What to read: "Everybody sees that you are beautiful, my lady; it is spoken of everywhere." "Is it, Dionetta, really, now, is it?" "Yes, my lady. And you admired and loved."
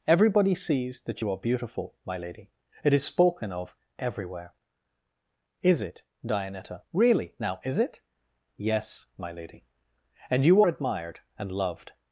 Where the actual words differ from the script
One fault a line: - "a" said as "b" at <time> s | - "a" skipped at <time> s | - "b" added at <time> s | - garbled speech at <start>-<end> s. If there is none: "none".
none